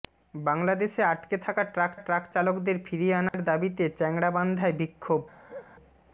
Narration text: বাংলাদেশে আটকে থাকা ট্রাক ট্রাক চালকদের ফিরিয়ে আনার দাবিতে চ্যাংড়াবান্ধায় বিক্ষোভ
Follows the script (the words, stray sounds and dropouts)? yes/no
no